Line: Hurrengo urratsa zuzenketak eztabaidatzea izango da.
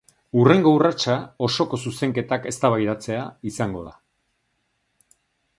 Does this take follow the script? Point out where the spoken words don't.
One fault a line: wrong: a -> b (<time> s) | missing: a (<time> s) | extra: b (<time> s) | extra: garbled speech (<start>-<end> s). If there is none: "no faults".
extra: osoko (1.5 s)